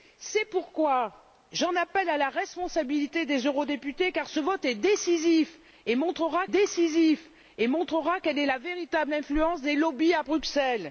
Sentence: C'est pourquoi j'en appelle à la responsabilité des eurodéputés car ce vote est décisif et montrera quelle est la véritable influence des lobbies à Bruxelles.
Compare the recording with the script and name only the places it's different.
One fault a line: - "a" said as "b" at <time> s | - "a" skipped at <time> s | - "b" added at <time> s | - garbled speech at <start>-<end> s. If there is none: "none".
- "décisif et montrera" added at 6.4 s